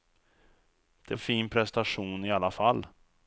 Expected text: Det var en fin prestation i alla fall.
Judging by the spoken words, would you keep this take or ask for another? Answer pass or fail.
fail